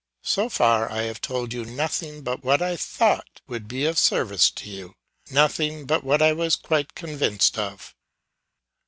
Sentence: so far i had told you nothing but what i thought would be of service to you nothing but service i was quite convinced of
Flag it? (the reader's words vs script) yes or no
yes